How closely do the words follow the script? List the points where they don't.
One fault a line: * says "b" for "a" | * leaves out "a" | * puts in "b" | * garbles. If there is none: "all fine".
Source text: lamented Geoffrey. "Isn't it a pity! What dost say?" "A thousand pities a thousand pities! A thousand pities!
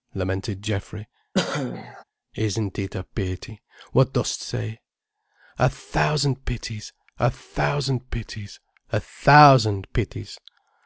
all fine